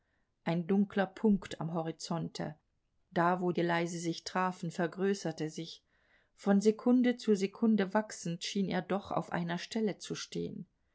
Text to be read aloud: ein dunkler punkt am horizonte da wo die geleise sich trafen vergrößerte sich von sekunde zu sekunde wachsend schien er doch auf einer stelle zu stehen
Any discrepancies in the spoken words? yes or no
yes